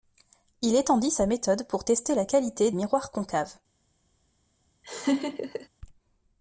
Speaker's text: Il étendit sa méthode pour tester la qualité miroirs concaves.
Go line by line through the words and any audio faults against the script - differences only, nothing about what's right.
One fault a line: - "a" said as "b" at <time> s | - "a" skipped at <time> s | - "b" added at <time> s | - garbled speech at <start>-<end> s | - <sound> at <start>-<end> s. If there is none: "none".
- laugh at 4.8-5.7 s